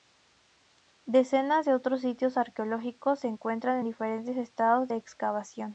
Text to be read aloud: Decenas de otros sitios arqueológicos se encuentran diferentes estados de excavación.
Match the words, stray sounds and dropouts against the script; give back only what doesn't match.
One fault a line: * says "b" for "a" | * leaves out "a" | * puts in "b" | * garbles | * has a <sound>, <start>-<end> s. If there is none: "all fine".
all fine